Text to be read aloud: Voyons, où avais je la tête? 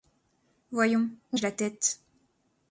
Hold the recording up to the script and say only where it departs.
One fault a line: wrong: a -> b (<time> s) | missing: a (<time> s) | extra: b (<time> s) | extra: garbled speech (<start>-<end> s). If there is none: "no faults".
missing: avais (1.4 s)